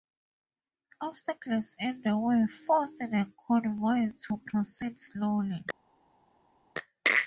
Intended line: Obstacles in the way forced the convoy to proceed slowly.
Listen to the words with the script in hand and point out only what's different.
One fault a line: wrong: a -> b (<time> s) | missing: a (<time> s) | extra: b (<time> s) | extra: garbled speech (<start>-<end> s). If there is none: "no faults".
no faults